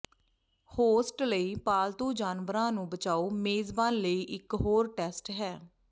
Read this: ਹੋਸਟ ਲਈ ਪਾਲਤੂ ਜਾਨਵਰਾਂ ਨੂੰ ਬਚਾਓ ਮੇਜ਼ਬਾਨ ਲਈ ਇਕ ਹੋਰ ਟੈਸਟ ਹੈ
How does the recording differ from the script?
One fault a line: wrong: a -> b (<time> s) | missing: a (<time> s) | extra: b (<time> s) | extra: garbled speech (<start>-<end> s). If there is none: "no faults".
no faults